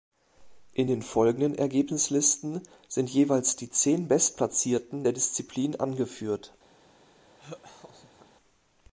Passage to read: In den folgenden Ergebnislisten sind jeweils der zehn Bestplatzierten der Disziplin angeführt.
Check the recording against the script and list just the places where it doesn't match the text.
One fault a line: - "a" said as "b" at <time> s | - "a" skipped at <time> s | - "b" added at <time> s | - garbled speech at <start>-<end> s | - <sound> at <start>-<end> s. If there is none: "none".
- "der" said as "die" at 3.6 s
- laugh at 7.4-8.3 s